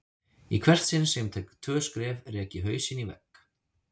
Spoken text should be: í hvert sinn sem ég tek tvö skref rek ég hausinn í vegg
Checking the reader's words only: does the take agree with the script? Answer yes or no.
yes